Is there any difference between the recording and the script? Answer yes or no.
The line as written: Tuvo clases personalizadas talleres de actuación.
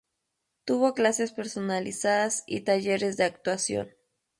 yes